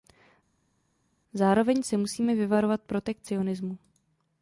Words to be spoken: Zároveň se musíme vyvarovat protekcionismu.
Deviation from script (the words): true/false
false